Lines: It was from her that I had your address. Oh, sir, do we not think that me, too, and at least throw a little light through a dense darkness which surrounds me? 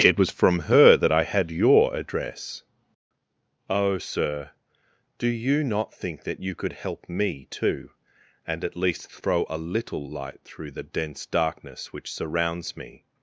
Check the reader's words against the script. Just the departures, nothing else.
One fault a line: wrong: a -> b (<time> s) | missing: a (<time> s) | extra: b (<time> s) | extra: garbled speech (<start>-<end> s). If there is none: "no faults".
wrong: we -> you (5.3 s)
extra: you could help (6.4 s)
wrong: a -> the (10.7 s)